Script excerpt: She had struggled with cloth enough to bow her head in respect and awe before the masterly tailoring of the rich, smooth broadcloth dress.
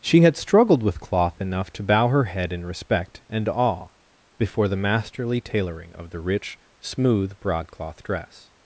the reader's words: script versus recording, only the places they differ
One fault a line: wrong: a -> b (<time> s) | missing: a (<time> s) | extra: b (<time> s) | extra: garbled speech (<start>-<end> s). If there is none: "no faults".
no faults